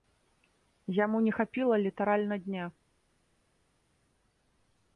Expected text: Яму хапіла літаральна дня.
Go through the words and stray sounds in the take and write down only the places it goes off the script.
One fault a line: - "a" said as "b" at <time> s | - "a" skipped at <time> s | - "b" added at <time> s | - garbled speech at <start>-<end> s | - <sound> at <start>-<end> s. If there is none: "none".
- "не" added at 1.2 s